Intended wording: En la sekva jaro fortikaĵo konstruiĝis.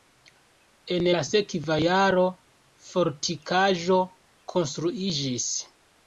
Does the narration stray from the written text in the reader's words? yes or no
no